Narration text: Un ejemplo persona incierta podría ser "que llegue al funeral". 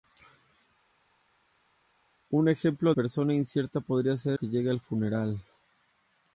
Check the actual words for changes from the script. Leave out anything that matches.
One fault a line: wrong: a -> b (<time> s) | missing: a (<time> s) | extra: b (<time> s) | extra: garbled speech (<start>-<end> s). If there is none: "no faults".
no faults